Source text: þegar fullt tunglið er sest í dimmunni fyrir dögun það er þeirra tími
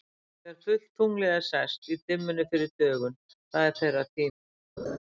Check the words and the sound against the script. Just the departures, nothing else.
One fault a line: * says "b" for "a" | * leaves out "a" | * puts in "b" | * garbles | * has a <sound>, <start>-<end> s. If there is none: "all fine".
* has a laugh, 4.8-5.0 s